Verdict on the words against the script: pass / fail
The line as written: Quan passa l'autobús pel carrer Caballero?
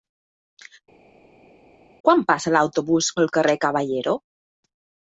pass